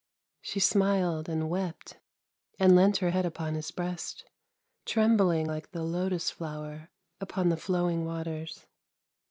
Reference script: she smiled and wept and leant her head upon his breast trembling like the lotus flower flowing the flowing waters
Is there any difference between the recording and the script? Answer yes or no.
yes